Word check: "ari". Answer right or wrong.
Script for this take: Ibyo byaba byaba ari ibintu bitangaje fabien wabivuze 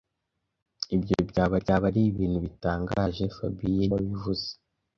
right